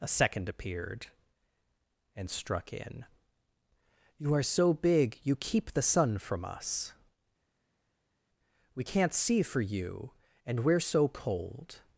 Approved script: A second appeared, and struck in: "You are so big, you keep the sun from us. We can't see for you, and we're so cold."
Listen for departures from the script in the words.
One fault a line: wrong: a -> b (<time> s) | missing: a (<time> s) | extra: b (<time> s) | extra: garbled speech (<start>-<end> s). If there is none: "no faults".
no faults